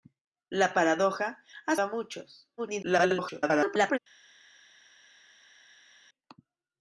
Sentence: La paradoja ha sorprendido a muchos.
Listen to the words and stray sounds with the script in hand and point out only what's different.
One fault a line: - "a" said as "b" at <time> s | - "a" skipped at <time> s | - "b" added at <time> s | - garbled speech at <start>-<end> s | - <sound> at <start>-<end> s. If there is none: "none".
- "sorprendido" skipped at 1.8 s
- garbled speech at 2.6-4.0 s